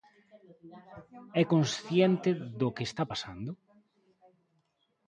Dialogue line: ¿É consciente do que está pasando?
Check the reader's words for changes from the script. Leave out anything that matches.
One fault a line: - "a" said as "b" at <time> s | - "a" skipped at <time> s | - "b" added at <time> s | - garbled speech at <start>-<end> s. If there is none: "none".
none